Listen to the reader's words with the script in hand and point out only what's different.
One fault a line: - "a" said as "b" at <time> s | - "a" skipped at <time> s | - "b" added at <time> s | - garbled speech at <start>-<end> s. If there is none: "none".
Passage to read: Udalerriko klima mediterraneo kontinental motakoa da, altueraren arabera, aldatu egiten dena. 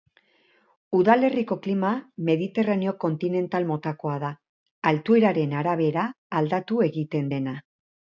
none